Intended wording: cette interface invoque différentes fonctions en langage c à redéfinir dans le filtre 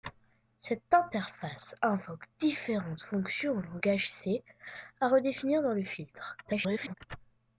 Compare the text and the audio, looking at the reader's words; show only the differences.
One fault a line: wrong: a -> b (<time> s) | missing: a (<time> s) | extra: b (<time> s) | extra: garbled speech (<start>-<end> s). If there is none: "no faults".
extra: garbled speech (6.4-6.9 s)